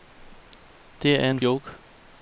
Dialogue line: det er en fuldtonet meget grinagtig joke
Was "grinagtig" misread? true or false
true